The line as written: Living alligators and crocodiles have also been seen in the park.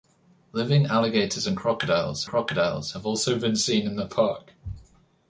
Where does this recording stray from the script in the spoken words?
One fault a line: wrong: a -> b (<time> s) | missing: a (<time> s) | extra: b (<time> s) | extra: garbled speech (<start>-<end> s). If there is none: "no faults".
extra: crocodiles (2.2 s)